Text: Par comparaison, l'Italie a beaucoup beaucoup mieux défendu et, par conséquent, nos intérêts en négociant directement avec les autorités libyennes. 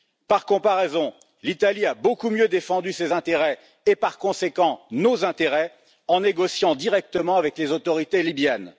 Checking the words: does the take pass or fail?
fail